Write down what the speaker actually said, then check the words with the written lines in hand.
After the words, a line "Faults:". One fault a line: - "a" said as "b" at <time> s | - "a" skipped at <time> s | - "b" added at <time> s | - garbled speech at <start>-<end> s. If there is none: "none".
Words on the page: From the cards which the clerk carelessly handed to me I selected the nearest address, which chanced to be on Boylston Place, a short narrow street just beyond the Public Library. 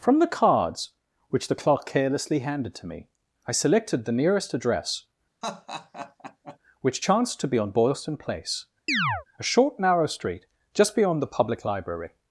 From the cards which the clerk carelessly handed to me I selected the nearest address, which chanced to be on Boylston Place, a short narrow street just beyond the Public Library.
Faults:
none